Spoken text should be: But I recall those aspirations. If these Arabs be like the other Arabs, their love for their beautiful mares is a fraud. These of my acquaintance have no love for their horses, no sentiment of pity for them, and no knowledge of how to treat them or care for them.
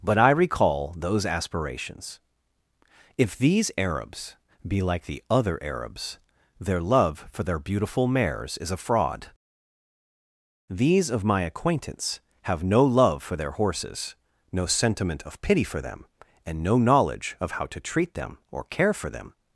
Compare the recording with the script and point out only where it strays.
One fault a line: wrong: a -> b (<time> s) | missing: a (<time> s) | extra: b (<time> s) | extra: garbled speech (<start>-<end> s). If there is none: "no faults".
no faults